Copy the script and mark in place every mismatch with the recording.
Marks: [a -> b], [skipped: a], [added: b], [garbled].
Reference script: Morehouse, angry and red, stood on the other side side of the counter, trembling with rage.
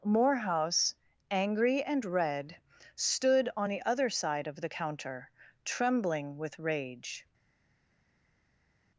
Morehouse, angry and red, stood on the other side [skipped: side] of the counter, trembling with rage.